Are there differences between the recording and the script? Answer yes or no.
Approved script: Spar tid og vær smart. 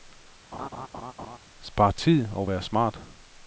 no